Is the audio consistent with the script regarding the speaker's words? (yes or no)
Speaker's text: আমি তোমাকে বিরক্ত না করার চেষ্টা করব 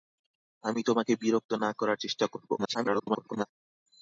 no